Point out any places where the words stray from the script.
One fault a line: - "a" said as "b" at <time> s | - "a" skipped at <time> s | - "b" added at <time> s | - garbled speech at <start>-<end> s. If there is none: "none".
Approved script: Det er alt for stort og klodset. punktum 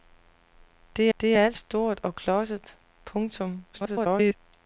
- "det" added at 1.2 s
- "for" skipped at 1.6 s
- garbled speech at 3.7-4.3 s